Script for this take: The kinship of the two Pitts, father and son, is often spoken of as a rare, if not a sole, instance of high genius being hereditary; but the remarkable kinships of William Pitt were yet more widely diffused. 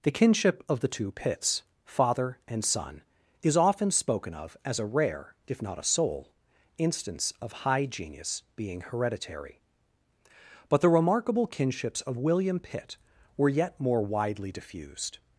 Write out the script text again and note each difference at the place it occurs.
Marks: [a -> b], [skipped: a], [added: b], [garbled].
The kinship of the two Pitts, father and son, is often spoken of as a rare, if not a sole, instance of high genius being hereditary; but the remarkable kinships of William Pitt were yet more widely diffused.